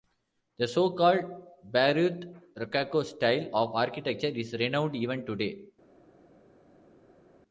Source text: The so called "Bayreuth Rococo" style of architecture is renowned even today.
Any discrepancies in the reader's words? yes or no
no